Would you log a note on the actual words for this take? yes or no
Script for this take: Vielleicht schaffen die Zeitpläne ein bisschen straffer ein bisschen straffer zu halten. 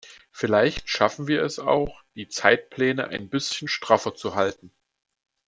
yes